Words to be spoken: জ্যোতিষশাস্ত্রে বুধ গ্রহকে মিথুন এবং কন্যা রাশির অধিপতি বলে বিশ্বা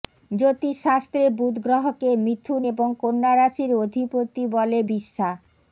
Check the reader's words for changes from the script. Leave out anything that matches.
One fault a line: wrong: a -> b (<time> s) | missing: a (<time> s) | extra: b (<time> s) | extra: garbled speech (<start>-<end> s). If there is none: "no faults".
no faults